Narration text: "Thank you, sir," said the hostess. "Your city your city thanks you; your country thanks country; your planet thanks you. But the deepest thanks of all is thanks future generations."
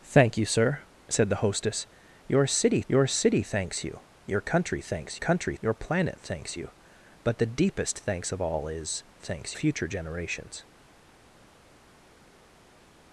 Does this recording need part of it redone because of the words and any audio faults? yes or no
no